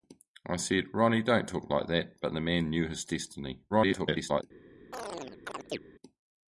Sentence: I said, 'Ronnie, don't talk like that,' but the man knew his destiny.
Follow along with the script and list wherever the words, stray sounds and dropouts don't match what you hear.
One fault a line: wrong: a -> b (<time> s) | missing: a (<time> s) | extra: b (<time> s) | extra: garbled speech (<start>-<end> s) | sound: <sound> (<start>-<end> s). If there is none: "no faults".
extra: garbled speech (3.7-4.4 s)
sound: chirp (4.9-5.8 s)